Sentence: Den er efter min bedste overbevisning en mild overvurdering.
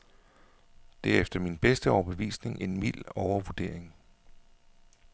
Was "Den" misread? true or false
true